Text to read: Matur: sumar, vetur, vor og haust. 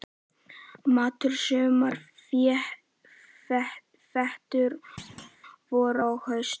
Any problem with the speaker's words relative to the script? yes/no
no